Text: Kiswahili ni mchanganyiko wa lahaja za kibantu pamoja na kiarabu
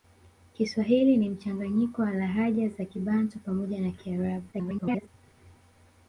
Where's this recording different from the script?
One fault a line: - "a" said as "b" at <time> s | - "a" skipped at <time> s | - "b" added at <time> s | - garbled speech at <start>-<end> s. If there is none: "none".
- garbled speech at 4.5-5.1 s